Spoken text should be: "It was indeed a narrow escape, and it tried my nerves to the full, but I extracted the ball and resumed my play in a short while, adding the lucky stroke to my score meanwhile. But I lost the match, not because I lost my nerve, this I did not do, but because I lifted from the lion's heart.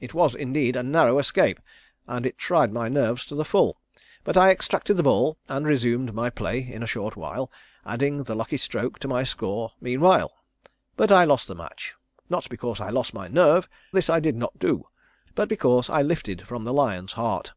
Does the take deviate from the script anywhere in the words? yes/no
no